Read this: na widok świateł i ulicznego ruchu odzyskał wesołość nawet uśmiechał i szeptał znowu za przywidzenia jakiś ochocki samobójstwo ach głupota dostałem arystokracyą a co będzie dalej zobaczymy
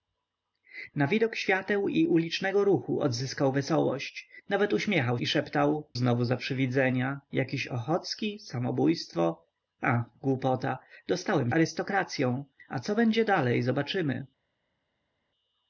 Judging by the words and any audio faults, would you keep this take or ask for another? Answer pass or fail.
pass